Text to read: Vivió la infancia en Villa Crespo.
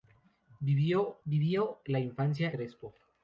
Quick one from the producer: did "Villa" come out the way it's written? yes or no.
no